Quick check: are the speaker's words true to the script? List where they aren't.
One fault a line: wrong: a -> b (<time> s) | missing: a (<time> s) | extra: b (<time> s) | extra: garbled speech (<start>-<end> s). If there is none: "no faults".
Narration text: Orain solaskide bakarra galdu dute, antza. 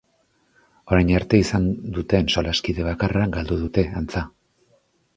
extra: arte izan duten (1.2 s)